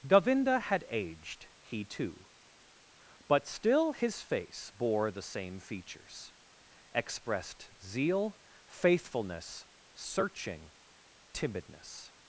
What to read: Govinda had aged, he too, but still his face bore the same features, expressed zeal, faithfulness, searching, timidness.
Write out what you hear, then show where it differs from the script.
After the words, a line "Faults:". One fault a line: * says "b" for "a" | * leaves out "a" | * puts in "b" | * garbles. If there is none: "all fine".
Govinda had aged, he too, but still his face bore the same features, expressed zeal, faithfulness, searching, timidness.
Faults:
all fine